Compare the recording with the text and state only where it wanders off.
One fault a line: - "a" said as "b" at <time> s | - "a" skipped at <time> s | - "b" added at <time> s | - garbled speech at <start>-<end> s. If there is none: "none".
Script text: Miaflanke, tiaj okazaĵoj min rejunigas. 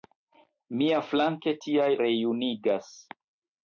- "okazaĵoj min" skipped at 1.9 s